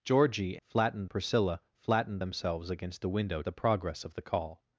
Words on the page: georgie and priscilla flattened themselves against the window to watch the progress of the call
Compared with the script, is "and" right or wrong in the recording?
wrong